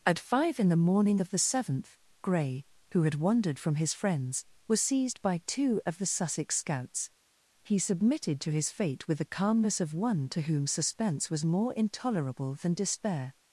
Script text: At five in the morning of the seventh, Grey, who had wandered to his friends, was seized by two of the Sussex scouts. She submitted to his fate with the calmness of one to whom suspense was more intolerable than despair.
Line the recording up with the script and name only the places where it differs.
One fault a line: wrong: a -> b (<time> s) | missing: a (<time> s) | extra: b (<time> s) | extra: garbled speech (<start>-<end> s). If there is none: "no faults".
wrong: to -> from (3.6 s)
wrong: She -> He (7.6 s)